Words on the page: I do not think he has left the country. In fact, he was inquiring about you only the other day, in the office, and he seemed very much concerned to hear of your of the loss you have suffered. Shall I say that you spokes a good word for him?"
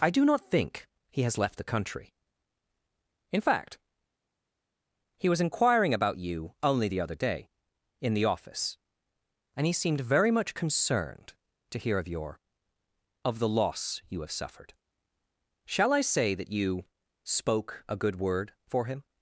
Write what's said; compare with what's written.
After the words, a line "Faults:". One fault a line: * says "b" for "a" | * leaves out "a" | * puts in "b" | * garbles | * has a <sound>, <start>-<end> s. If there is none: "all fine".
I do not think he has left the country. In fact, he was inquiring about you only the other day, in the office, and he seemed very much concerned to hear of your of the loss you have suffered. Shall I say that you spoke a good word for him?"
Faults:
* says "spoke" for "spokes"